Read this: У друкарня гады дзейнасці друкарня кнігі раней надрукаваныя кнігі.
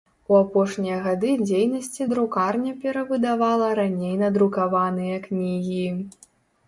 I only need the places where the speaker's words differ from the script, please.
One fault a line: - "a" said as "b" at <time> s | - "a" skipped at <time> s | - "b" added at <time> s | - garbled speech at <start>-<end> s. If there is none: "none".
- "друкарня" said as "апошнія" at 0.4 s
- "кнігі" said as "перавыдавала" at 2.8 s